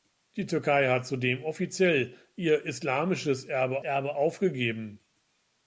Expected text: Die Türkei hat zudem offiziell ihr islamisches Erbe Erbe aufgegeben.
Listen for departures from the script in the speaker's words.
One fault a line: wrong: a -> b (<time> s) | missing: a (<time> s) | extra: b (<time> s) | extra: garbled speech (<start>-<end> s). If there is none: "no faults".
no faults